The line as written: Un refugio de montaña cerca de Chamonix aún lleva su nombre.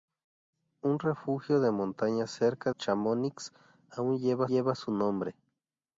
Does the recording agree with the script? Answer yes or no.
no